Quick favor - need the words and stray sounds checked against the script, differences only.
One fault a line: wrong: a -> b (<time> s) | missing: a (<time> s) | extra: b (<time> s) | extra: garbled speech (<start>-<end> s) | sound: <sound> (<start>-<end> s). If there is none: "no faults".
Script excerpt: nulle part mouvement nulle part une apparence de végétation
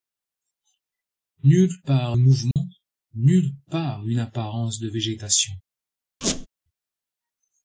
sound: dropout (2.5-2.6 s)
sound: squeak (6.2-6.5 s)